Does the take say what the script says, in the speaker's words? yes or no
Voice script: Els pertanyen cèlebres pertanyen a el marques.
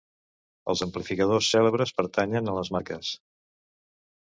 no